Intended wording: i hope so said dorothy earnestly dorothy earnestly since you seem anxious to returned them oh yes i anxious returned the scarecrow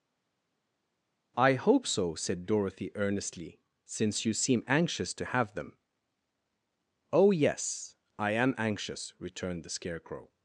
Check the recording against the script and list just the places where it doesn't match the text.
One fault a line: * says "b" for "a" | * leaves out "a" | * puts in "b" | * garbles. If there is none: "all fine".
* leaves out "dorothy earnestly"
* says "have" for "returned"
* puts in "am"